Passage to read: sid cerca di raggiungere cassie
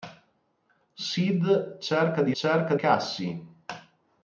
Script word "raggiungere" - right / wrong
wrong